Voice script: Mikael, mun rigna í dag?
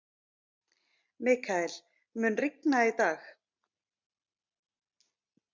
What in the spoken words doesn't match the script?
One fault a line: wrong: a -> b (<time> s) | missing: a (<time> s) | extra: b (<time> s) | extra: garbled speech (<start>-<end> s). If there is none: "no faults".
no faults